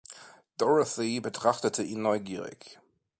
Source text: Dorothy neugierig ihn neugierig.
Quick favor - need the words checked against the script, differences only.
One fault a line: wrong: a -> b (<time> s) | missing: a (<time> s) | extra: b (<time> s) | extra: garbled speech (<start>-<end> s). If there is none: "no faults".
wrong: neugierig -> betrachtete (1.2 s)